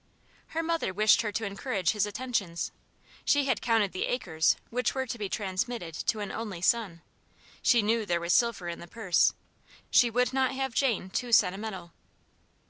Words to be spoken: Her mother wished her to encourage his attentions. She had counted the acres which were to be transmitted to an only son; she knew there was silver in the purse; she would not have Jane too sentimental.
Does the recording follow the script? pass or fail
pass